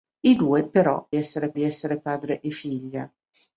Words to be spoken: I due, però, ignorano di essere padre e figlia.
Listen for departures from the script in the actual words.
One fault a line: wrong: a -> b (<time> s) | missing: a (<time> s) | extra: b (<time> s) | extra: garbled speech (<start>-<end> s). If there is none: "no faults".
wrong: ignorano -> essere (1.1 s)